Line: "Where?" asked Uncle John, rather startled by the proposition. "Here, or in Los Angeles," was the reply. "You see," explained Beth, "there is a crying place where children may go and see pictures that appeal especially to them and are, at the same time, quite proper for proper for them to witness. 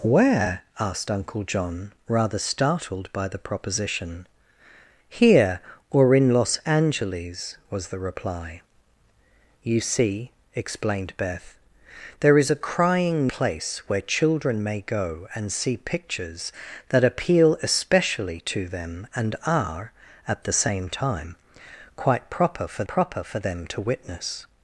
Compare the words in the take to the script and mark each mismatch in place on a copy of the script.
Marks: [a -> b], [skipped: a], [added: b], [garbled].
"Where?" asked Uncle John, rather startled by the proposition. "Here, or in Los Angeles," was the reply. "You see," explained Beth, "there is a crying place where children may go and see pictures that appeal especially to them and are, at the same time, quite proper for proper for them to witness.